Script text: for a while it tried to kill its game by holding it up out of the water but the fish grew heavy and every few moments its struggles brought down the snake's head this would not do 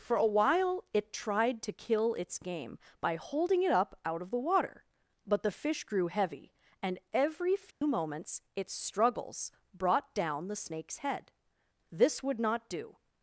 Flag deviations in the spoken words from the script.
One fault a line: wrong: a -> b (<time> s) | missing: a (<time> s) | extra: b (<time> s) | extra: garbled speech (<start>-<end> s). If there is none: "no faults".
no faults